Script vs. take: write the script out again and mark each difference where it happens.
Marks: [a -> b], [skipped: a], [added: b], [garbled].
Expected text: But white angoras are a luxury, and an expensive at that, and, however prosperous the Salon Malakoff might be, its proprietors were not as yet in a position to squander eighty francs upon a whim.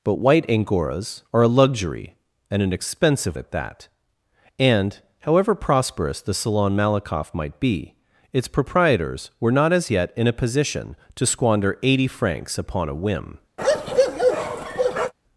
But white angoras are a luxury, and an expensive at that, and, however prosperous the Salon Malakoff might be, its proprietors were not as yet in a position to squander eighty francs upon a whim.